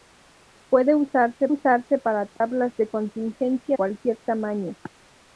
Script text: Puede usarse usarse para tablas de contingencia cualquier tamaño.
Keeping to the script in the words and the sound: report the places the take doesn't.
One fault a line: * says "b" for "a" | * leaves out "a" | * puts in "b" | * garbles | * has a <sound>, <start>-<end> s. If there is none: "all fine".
* has a dropout, 2.4-2.4 s